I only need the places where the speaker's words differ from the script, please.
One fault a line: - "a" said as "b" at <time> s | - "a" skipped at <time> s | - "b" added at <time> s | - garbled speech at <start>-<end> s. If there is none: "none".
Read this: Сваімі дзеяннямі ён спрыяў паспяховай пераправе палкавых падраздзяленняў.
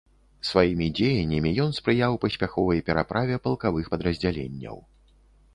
none